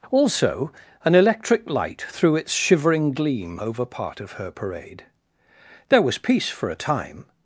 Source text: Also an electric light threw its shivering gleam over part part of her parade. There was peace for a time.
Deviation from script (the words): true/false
true